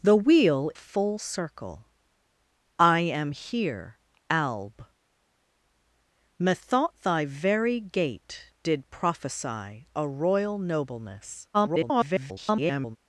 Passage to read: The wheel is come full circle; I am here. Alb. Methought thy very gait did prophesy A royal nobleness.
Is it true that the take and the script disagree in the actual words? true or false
true